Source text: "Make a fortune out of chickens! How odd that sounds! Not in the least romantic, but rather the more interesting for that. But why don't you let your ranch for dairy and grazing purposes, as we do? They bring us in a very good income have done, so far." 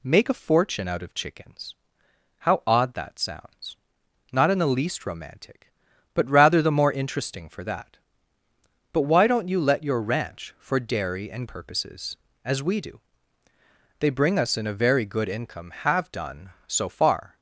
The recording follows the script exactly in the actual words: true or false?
false